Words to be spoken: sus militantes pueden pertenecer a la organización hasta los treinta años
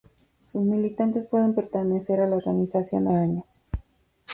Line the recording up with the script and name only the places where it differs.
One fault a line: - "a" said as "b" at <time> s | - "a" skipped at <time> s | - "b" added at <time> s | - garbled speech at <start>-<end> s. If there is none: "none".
- "hasta los treinta" skipped at 3.1 s